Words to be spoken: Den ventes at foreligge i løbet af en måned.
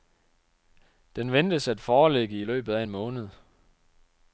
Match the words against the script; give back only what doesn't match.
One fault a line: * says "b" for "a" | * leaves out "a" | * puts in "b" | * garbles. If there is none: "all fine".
all fine